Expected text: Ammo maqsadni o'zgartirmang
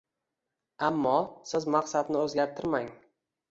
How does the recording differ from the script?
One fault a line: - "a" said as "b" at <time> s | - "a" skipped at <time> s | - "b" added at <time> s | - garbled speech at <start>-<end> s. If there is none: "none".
- "siz" added at 1.5 s